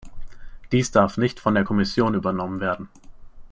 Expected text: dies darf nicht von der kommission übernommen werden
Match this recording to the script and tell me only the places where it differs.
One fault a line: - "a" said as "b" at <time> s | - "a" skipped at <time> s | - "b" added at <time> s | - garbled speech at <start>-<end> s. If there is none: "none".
none